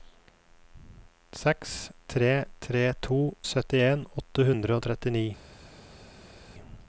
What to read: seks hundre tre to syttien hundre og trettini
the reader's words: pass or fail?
fail